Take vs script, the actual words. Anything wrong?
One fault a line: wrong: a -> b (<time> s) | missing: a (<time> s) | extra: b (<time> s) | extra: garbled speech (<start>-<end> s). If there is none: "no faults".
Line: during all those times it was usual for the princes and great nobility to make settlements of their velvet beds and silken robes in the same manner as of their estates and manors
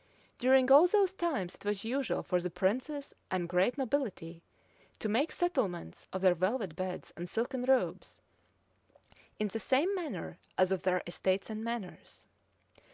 no faults